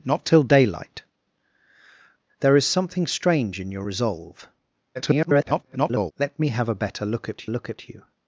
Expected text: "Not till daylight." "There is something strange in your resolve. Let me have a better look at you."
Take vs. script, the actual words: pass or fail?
fail